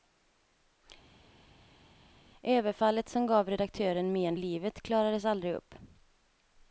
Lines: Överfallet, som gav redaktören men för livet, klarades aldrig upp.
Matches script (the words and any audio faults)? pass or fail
fail